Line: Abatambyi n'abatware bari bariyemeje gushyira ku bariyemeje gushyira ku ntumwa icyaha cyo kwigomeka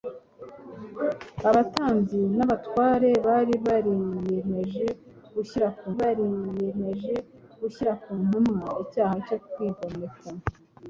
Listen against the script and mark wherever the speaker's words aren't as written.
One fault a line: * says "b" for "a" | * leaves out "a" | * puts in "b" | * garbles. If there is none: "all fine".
all fine